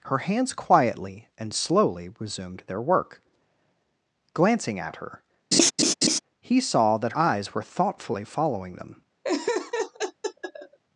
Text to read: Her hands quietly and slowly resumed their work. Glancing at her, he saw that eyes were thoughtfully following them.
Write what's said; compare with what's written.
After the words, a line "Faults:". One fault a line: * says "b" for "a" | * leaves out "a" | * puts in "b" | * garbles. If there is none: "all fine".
Her hands quietly and slowly resumed their work. Glancing at her, he saw that eyes were thoughtfully following them.
Faults:
all fine